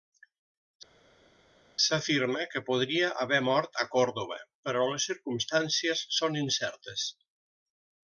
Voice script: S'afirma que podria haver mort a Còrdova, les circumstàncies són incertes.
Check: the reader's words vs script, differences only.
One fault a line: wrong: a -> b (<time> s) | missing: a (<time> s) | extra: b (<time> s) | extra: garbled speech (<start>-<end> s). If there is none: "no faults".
extra: però (4.7 s)